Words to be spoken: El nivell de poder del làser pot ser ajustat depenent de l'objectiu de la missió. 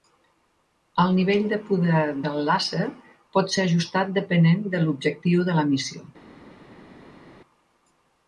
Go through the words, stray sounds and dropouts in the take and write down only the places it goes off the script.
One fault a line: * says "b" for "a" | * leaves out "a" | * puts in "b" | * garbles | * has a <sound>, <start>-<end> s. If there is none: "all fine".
all fine